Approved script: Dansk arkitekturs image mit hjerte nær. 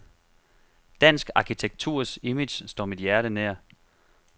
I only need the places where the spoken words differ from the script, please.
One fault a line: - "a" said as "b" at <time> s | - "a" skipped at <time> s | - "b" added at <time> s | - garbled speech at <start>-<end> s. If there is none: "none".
- "står" added at 2.7 s